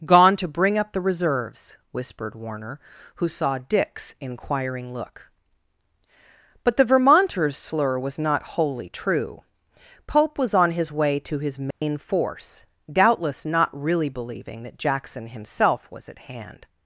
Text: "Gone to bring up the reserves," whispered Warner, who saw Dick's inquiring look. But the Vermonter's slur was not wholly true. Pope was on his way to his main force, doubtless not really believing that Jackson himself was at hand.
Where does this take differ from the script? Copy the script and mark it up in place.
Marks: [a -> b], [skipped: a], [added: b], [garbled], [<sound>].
"Gone to bring up the reserves," whispered Warner, who saw Dick's inquiring look. But the Vermonter's slur was not wholly true. Pope was on his way to his main [dropout] force, doubtless not really believing that Jackson himself was at hand.